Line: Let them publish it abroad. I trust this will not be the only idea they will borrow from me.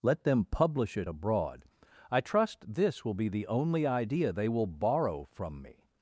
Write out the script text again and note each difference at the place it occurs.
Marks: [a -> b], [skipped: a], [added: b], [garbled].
Let them publish it abroad. I trust this will [skipped: not] be the only idea they will borrow from me.